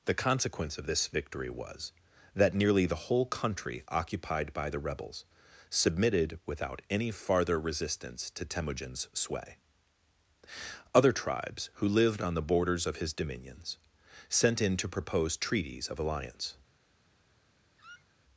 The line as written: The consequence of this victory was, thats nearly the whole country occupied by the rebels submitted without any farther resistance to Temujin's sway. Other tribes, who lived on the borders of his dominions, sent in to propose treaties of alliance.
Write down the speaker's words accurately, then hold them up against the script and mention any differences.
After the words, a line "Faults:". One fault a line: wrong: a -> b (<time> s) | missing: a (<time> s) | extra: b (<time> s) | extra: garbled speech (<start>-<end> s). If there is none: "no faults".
The consequence of this victory was, that nearly the whole country occupied by the rebels submitted without any farther resistance to Temujin's sway. Other tribes, who lived on the borders of his dominions, sent in to propose treaties of alliance.
Faults:
wrong: thats -> that (2.3 s)